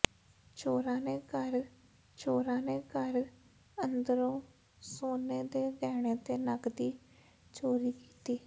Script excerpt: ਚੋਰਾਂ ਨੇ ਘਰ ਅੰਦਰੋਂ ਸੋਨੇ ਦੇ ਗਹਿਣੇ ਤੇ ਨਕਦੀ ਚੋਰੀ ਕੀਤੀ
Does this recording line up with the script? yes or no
no